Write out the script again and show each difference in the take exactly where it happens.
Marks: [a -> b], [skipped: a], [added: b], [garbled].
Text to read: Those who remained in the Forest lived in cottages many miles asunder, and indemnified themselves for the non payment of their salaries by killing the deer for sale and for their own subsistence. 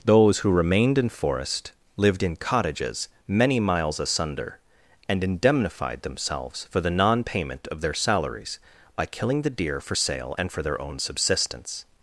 Those who remained in [skipped: the] Forest lived in cottages many miles asunder, and indemnified themselves for the non payment of their salaries by killing the deer for sale and for their own subsistence.